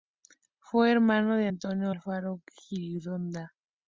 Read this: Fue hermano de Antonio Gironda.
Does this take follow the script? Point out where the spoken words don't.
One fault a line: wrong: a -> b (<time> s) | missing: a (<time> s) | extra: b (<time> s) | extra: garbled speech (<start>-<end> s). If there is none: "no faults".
extra: Alfaro (1.9 s)